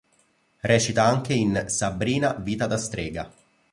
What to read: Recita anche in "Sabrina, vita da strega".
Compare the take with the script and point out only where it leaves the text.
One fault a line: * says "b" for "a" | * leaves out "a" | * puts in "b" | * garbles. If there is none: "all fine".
all fine